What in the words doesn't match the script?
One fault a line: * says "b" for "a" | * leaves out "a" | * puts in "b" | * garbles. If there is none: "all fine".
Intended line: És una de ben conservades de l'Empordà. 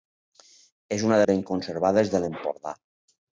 all fine